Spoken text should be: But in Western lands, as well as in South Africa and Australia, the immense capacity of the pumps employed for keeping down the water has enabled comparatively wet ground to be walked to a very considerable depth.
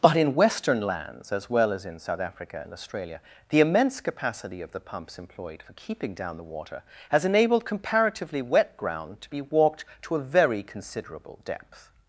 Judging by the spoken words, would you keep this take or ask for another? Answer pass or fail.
pass